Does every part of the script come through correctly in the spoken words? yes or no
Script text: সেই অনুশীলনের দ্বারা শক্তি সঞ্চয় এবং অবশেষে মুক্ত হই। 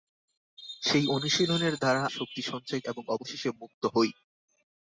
yes